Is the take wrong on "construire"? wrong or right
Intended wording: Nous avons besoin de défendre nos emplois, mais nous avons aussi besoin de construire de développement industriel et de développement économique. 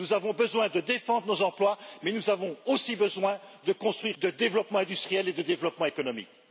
right